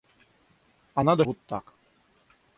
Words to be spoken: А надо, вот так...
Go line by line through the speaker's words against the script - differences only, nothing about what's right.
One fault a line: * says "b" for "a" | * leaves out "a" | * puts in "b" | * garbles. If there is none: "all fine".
all fine